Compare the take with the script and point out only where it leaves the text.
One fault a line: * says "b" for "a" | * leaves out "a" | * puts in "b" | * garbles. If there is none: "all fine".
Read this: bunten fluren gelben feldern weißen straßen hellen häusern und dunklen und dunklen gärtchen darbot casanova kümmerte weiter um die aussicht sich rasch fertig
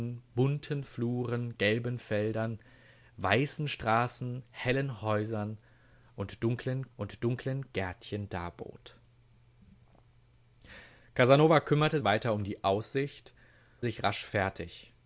all fine